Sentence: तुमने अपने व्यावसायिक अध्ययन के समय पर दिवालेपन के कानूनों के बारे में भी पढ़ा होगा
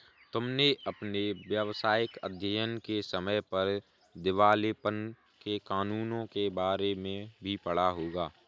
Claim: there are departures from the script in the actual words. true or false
false